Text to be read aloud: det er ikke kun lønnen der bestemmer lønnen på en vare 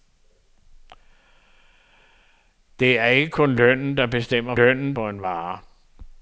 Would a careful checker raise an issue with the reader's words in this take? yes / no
no